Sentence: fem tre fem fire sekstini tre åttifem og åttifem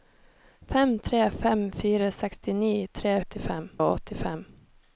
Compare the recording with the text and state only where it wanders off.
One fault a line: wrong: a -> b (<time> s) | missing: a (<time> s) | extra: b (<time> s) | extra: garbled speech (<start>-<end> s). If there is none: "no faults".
no faults